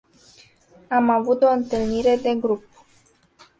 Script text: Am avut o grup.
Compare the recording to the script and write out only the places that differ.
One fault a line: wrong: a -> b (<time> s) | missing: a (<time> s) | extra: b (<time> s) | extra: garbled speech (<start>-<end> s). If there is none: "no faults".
extra: întâlnire de (1.5 s)